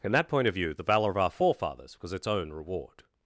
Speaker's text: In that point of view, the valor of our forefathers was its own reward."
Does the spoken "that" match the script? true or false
true